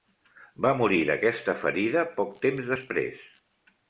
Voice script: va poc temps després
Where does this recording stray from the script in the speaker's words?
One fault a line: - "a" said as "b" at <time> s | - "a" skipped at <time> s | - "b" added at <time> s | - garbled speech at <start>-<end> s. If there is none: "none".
- "morir d'aquesta ferida" added at 0.8 s